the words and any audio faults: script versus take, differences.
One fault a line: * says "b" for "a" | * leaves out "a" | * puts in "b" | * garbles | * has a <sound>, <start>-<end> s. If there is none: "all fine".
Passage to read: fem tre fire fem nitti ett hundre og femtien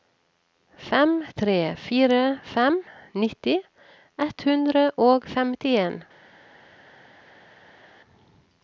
all fine